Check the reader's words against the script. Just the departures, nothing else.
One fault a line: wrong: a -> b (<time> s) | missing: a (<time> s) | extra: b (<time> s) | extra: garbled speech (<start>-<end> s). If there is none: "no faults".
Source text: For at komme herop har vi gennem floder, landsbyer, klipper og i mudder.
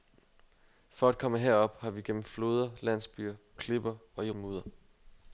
no faults